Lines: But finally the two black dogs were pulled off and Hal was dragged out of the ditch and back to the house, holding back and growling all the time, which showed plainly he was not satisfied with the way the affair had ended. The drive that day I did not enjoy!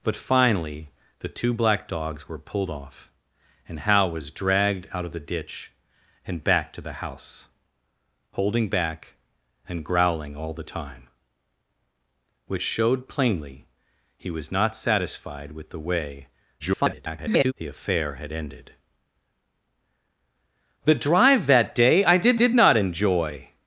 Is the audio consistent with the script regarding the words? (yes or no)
no